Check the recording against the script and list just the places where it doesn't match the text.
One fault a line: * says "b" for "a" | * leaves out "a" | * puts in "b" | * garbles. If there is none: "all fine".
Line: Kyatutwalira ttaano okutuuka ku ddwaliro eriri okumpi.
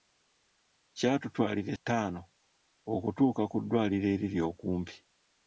all fine